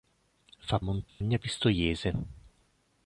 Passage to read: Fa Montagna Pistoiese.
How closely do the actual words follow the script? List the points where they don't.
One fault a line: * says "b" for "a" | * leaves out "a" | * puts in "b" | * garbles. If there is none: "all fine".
all fine